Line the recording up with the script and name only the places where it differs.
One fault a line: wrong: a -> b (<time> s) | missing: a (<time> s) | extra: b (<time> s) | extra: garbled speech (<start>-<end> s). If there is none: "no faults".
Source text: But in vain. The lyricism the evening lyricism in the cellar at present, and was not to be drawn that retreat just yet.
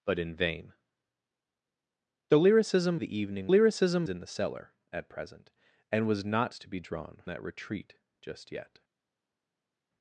no faults